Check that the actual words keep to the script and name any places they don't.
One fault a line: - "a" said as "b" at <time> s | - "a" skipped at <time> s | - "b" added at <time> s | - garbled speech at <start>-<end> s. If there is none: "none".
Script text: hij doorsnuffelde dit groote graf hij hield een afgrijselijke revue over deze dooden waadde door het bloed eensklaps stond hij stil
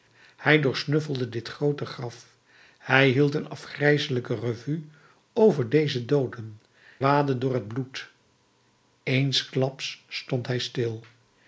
none